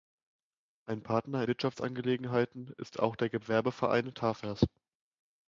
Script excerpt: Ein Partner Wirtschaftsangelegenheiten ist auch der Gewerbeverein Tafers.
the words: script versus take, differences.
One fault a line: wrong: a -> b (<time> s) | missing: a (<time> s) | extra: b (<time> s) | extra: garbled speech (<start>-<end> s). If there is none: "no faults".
no faults